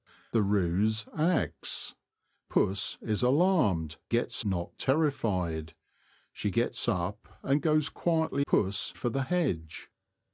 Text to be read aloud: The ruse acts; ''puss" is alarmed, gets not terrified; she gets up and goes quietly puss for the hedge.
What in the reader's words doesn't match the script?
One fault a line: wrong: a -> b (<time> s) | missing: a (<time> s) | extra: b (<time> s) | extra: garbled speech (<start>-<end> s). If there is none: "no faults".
no faults